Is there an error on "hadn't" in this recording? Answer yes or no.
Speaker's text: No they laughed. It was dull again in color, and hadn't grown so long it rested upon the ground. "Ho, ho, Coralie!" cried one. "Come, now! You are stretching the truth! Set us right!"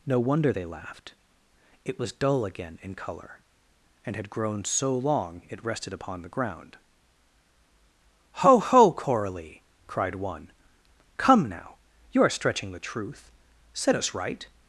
yes